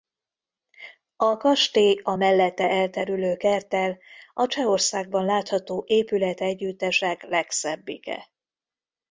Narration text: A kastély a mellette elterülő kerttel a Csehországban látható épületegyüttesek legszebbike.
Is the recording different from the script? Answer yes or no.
no